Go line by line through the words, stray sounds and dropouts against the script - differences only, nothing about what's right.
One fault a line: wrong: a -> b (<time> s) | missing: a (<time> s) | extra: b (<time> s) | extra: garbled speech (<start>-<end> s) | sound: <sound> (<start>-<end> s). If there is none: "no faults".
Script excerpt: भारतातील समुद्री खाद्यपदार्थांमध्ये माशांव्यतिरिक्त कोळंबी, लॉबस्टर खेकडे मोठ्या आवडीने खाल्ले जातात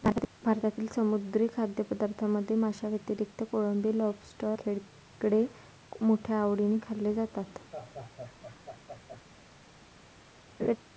sound: laugh (7.7-9.2 s)
sound: laugh (10.6-10.8 s)